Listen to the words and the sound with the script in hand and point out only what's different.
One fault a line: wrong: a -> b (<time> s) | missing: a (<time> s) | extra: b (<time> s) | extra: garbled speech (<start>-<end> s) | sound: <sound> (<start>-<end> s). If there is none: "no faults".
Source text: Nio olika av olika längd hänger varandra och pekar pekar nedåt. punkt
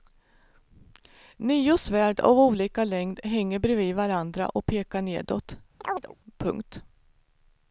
wrong: olika -> svärd (1.8 s)
extra: bredvid (3.6 s)
missing: pekar (5.0 s)
sound: chirp (5.8-6.2 s)